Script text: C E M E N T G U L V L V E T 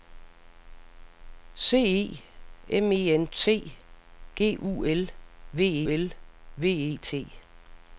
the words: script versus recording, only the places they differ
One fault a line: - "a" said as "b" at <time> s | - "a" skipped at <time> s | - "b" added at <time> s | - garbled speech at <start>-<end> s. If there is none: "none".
none